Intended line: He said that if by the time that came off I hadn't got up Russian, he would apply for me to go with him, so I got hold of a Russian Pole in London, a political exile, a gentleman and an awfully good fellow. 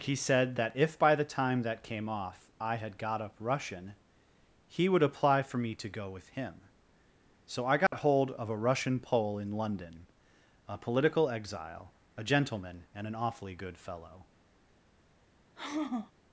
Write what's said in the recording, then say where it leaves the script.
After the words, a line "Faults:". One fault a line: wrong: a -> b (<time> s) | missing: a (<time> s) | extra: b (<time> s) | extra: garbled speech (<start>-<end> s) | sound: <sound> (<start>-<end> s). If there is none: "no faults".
He said that if by the time that came off I had got up Russian, he would apply for me to go with him, so I got hold of a Russian Pole in London, a political exile, a gentleman and an awfully good fellow.
Faults:
wrong: hadn't -> had (2.8 s)
sound: dropout (7.9-7.9 s)
sound: sigh (15.6-16.1 s)